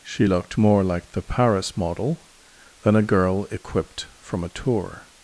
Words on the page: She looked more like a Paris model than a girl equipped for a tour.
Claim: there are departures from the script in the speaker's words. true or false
true